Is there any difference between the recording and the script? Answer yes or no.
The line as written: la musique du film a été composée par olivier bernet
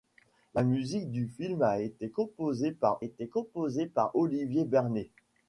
yes